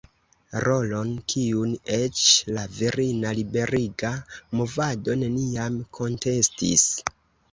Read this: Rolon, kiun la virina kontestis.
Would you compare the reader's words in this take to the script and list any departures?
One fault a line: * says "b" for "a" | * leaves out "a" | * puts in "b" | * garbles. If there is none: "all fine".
* puts in "eĉ"
* puts in "liberiga movado neniam"